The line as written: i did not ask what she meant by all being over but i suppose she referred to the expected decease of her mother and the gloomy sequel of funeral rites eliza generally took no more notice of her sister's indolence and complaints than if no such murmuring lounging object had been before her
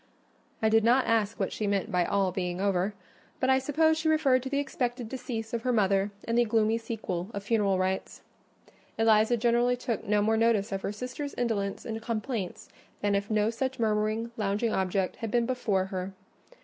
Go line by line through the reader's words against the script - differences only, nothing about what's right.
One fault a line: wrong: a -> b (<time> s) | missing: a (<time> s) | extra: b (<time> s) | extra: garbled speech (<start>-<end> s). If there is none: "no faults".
no faults